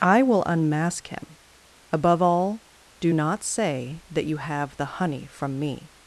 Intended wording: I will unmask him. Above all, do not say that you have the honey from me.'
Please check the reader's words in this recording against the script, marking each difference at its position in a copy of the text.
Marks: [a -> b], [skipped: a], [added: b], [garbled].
I will unmask him. Above all, do not say that you have the honey from me.'